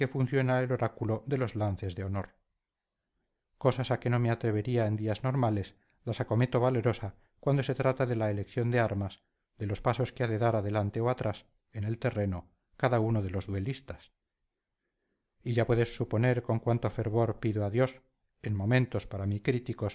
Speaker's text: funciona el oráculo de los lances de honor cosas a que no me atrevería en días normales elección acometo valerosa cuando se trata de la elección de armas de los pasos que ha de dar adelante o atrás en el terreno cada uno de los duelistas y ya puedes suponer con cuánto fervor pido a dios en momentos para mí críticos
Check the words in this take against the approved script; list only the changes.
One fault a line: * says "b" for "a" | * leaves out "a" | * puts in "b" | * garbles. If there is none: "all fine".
* says "las" for "elección"